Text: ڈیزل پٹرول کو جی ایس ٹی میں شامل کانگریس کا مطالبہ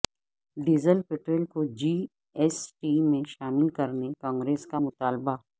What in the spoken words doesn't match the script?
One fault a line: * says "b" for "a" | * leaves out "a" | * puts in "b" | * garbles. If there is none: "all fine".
* puts in "کرنے"